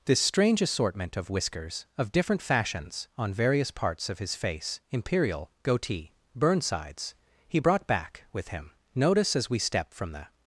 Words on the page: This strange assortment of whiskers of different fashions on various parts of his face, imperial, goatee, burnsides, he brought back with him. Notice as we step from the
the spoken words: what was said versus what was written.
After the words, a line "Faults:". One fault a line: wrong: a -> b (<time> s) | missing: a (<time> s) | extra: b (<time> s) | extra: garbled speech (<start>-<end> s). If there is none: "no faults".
This strange assortment of whiskers of different fashions on various parts of his face, imperial, goatee, burnsides, he brought back with him. Notice as we step from the
Faults:
no faults